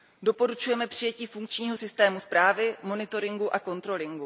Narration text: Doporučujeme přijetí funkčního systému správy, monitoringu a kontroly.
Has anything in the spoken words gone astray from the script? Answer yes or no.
no